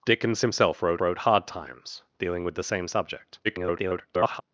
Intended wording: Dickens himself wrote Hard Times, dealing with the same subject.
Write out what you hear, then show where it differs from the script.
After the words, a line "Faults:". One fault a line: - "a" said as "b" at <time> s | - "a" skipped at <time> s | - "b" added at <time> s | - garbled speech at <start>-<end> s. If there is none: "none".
Dickens himself wrote wrote Hard Times, dealing with the same subject. [garbled]
Faults:
- "wrote" added at 1.0 s
- garbled speech at 3.4-4.4 s